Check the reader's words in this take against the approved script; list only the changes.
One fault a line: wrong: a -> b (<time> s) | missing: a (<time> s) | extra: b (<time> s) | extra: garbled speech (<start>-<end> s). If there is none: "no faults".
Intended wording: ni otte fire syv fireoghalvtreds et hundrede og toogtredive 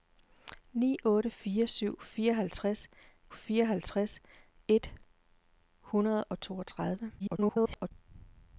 extra: fireoghalvtreds (3.3 s)
extra: garbled speech (7.2-7.9 s)